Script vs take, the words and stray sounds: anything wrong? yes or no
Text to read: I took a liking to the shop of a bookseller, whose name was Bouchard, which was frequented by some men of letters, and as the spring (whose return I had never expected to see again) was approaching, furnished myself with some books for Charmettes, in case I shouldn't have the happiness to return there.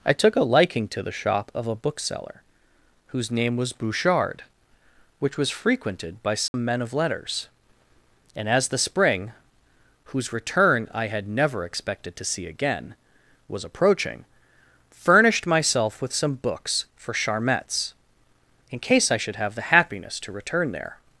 yes